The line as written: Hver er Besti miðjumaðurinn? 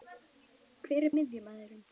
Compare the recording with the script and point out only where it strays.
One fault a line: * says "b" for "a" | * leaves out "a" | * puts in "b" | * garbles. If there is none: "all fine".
* leaves out "Besti"